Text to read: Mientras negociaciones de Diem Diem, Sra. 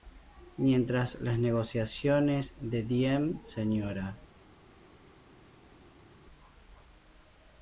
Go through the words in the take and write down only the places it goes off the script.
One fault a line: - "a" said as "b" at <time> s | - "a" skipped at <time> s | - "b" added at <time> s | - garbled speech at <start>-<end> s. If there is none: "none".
- "las" added at 1.2 s
- "Diem" skipped at 3.4 s